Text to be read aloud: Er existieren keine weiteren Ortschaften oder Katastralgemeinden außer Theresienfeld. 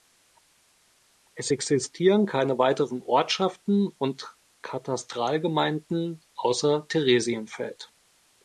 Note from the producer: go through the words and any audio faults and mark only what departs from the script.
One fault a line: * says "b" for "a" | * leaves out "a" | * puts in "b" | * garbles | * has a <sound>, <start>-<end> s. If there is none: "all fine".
* says "Es" for "Er"
* says "und" for "oder"